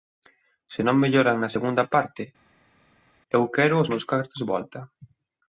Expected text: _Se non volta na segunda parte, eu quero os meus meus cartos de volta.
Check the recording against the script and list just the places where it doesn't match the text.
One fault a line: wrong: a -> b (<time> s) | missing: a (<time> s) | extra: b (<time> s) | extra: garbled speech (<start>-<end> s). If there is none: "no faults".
wrong: volta -> melloran (1.0 s)
missing: meus (4.0 s)